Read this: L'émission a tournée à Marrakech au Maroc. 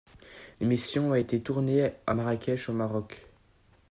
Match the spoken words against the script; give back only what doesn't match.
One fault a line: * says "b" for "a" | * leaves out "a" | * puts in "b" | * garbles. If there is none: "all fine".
* puts in "été"